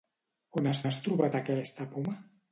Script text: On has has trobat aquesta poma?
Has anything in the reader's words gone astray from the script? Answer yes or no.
no